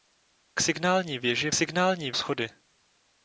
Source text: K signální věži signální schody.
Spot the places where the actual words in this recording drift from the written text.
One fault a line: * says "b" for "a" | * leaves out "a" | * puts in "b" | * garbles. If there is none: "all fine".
all fine